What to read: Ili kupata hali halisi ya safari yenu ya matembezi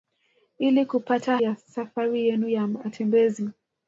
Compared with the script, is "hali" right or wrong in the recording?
wrong